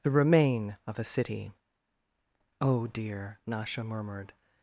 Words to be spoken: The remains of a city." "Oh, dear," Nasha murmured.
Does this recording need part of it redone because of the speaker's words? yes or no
yes